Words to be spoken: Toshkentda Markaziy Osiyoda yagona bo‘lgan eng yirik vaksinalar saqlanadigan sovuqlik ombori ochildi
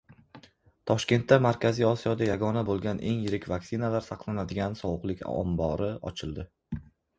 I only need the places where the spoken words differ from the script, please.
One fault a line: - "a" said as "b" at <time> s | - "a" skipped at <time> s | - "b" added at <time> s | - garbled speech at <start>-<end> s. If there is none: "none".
none